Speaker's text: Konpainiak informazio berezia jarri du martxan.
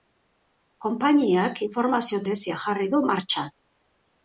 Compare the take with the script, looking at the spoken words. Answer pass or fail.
pass